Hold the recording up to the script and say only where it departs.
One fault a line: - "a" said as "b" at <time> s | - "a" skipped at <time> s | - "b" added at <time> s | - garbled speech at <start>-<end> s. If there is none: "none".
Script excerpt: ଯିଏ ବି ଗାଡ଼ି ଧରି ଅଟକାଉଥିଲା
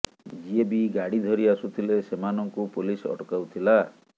- "ଆସୁଥିଲେ ସେମାନଙ୍କୁ ପୋଲିସ" added at 1.6 s